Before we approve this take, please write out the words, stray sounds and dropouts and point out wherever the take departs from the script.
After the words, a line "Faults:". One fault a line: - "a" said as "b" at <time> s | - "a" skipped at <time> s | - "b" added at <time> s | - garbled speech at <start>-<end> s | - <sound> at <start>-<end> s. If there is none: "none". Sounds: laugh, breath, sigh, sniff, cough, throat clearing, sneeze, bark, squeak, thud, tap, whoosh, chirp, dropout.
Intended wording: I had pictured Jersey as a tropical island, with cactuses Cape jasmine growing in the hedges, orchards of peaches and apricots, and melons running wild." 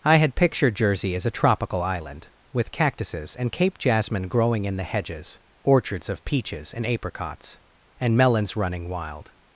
I had pictured Jersey as a tropical island, with cactuses and Cape jasmine growing in the hedges, orchards of peaches and apricots, and melons running wild."
Faults:
- "and" added at 3.4 s